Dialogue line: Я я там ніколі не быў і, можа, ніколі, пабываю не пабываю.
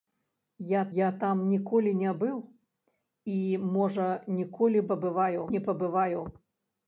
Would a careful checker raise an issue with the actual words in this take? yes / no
no